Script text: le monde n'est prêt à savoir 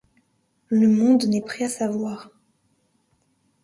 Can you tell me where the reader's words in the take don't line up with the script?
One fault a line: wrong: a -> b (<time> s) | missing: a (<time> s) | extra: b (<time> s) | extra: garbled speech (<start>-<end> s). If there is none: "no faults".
no faults